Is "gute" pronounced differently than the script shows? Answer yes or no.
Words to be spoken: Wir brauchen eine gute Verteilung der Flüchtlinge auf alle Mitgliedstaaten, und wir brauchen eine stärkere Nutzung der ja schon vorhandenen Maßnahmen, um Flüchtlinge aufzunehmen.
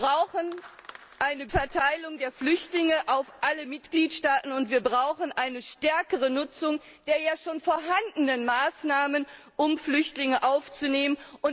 yes